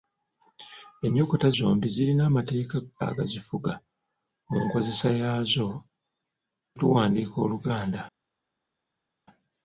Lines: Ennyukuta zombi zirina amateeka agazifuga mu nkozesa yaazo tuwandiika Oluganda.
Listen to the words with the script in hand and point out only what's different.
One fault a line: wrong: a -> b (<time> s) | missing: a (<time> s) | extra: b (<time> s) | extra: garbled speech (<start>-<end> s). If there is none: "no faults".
no faults